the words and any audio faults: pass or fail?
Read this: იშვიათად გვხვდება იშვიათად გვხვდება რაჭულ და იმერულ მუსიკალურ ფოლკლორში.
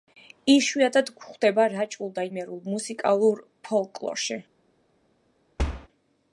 fail